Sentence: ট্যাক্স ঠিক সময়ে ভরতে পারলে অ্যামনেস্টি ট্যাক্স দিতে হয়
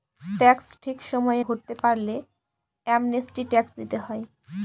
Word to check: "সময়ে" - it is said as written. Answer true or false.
true